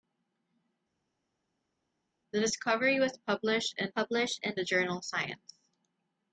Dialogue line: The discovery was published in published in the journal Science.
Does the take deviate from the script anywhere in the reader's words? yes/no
no